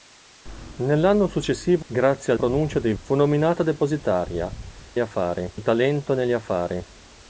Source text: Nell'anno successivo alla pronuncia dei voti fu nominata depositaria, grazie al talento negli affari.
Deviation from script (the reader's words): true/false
true